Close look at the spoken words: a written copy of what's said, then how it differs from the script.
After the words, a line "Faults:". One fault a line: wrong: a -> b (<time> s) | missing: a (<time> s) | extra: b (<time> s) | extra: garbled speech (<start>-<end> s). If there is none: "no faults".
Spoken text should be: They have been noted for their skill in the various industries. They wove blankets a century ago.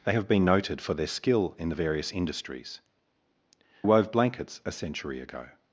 They have been noted for their skill in the various industries. Wove blankets a century ago.
Faults:
missing: They (2.8 s)